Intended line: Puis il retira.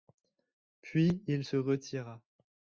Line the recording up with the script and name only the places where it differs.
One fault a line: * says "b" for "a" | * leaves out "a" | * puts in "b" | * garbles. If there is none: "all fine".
* puts in "se"